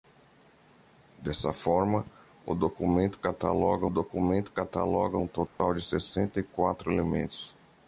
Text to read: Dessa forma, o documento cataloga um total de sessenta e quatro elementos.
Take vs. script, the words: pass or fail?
fail